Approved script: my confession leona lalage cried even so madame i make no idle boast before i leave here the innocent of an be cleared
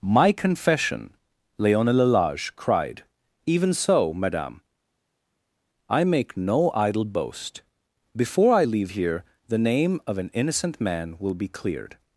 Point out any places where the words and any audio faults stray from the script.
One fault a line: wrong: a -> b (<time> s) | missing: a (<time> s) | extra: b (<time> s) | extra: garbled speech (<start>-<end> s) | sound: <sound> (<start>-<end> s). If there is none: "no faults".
wrong: innocent -> name (9.6 s)
extra: innocent man will (10.3 s)